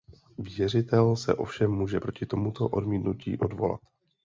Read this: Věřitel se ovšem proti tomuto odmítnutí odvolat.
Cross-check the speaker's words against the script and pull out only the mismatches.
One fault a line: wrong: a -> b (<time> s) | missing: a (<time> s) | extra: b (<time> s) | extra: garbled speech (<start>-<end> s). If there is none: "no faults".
extra: může (1.7 s)